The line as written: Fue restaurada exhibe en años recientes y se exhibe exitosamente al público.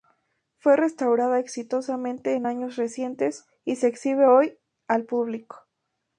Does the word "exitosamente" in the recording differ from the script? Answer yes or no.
yes